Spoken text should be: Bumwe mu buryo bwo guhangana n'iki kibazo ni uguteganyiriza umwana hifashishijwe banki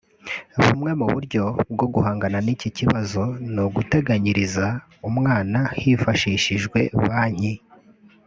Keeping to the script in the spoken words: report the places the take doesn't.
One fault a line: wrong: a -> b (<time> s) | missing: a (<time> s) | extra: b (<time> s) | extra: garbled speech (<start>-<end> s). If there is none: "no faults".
no faults